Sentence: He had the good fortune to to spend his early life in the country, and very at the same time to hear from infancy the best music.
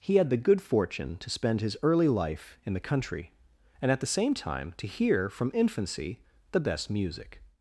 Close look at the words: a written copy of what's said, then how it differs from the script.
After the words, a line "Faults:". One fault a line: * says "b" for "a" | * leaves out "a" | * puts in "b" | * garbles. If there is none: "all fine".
He had the good fortune to spend his early life in the country, and at the same time to hear from infancy the best music.
Faults:
* leaves out "to"
* leaves out "very"